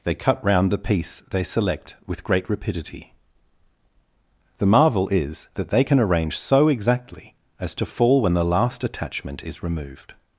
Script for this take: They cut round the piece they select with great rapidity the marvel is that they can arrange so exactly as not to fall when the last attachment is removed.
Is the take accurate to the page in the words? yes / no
no